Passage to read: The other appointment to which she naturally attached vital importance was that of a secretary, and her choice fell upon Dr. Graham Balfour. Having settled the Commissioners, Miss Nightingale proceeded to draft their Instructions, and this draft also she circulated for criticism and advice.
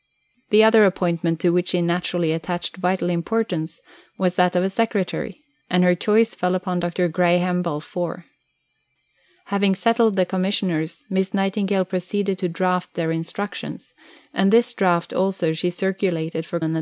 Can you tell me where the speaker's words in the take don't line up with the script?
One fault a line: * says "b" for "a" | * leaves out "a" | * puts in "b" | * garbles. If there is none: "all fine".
* leaves out "criticism"